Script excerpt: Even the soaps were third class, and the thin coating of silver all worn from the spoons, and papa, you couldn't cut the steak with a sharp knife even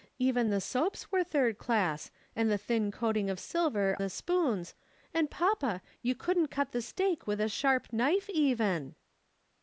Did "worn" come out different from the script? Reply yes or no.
yes